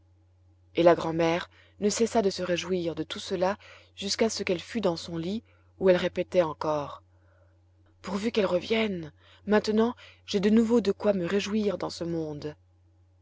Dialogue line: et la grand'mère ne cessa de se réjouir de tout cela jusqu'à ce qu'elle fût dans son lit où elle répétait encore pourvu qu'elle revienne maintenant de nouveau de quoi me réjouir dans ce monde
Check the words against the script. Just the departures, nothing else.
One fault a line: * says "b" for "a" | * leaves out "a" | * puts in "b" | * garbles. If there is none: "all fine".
* puts in "j'ai"